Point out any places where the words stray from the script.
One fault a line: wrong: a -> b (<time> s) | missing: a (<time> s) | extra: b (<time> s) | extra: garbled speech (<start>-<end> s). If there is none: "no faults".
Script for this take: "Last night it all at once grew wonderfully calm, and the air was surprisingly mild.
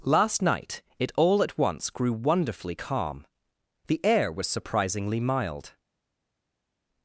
missing: and (3.3 s)